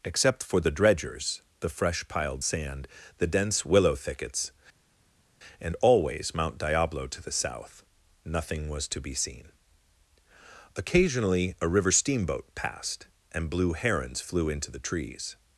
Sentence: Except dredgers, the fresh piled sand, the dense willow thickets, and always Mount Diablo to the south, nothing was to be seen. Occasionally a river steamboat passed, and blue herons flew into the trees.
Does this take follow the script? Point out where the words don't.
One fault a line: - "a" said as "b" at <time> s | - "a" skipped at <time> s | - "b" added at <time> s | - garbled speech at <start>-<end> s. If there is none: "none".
- "for the" added at 0.4 s